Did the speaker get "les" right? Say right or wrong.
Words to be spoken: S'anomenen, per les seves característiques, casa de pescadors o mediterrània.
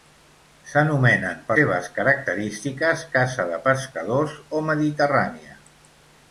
wrong